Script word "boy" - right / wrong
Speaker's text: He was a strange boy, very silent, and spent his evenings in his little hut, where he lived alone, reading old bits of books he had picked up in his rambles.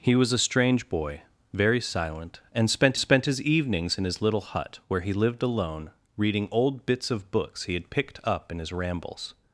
right